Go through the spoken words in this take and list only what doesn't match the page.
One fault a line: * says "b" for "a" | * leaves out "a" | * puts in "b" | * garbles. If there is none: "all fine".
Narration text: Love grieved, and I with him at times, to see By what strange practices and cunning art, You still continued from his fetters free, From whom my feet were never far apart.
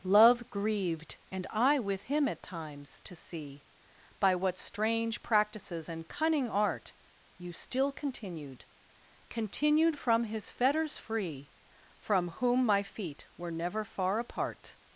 * puts in "continued"